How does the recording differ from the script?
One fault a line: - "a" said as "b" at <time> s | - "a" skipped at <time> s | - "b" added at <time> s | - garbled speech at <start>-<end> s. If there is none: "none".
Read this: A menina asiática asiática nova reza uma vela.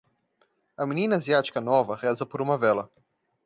- "asiática" skipped at 1.6 s
- "por" added at 2.2 s